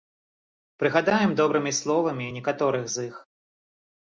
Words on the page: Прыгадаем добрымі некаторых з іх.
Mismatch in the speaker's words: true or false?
true